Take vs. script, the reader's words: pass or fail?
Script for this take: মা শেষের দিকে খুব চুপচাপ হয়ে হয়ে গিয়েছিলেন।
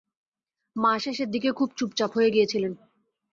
fail